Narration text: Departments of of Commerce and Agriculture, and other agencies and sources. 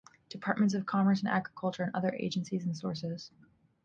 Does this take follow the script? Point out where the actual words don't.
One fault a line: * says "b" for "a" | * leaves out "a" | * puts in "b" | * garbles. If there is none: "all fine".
* leaves out "of"